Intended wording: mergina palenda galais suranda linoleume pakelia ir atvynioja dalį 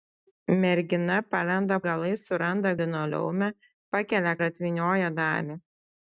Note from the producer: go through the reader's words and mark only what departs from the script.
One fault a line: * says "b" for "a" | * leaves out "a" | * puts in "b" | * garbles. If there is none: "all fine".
all fine